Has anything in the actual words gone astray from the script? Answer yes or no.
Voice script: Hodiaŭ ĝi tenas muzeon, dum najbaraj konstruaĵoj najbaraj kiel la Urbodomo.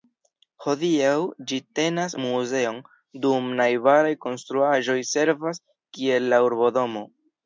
yes